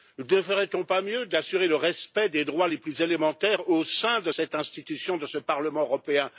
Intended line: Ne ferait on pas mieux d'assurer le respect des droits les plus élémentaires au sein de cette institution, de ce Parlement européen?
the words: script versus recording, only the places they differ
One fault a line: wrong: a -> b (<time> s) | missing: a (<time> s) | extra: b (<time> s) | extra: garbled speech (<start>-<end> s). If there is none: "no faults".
no faults